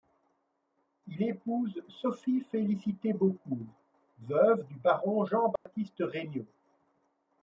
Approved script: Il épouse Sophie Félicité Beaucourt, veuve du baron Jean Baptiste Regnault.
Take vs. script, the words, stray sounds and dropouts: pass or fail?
fail